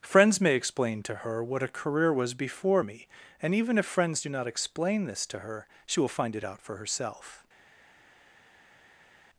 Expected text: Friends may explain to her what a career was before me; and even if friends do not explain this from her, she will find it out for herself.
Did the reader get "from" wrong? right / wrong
wrong